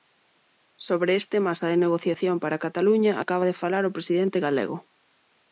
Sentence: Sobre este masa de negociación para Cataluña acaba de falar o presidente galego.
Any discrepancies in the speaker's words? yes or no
no